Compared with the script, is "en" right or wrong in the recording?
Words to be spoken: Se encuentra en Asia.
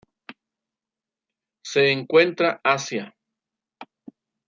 wrong